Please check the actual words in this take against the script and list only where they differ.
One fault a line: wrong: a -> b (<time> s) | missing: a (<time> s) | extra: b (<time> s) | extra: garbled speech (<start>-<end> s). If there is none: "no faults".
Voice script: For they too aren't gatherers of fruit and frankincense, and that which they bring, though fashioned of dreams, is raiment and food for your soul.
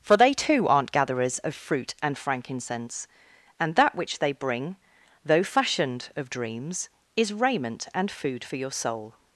no faults